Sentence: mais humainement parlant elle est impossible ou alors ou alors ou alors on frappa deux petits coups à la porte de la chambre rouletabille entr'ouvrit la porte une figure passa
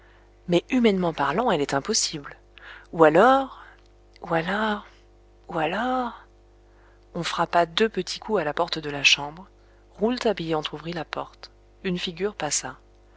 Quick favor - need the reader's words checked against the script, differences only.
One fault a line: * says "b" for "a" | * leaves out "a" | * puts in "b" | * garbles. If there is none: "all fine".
all fine